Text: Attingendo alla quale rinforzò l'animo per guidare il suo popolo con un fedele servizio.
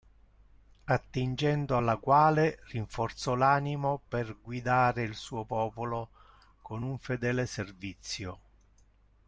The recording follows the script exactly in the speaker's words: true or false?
true